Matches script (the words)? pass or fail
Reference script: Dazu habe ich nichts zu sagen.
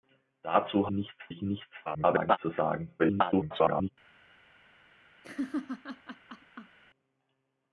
fail